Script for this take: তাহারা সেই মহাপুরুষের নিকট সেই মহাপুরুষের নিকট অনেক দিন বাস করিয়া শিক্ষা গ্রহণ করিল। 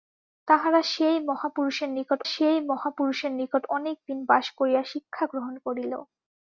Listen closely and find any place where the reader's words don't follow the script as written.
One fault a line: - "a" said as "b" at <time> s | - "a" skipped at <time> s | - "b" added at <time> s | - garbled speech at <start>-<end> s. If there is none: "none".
none